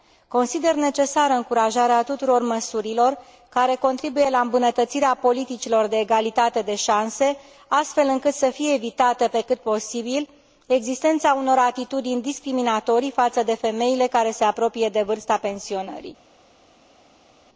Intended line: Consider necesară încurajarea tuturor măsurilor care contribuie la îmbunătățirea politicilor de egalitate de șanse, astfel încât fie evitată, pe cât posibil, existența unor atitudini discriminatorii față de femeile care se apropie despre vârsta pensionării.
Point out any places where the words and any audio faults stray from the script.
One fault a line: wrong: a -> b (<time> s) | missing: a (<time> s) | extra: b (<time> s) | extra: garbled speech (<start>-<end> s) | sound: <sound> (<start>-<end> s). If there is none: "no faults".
extra: să (8.3 s)
wrong: despre -> de (14.9 s)